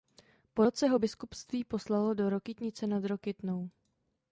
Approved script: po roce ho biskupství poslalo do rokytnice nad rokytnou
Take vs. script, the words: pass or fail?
pass